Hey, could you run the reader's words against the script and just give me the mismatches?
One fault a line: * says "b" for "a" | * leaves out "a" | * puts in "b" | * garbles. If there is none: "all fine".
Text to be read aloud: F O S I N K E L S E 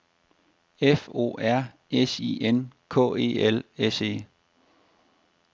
* puts in "R"